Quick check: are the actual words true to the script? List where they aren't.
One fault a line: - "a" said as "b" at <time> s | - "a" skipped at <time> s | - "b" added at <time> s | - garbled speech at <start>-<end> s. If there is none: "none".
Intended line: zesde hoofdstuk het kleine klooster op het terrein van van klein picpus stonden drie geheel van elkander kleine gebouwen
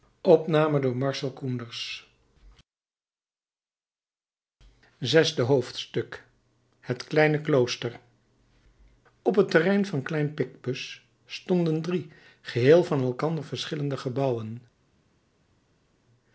- "van" skipped at 10.1 s
- "kleine" said as "verschillende" at 13.4 s